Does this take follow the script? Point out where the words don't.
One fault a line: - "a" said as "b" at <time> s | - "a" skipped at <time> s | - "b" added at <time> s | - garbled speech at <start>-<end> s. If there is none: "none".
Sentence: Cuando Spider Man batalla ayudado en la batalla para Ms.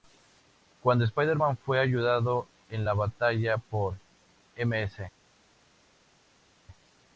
- "batalla" said as "fue" at 1.6 s
- "para" said as "por" at 3.6 s